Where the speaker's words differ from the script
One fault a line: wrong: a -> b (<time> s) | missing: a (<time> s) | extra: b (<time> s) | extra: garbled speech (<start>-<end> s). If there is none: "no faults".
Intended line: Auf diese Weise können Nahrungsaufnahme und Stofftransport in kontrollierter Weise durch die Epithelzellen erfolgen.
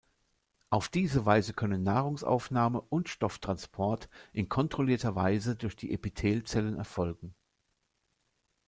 no faults